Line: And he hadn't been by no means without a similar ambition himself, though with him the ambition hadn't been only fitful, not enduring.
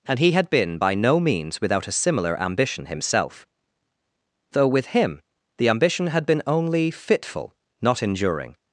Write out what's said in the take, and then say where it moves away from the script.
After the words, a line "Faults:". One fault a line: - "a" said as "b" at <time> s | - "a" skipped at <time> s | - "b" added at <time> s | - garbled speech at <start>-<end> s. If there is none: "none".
And he had been by no means without a similar ambition himself, though with him the ambition had been only fitful, not enduring.
Faults:
- "hadn't" said as "had" at 0.3 s
- "hadn't" said as "had" at 6.1 s